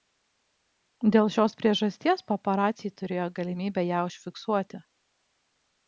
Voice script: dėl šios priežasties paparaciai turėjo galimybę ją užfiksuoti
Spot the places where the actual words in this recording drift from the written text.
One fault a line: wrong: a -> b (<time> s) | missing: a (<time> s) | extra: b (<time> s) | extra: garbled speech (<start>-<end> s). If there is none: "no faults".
no faults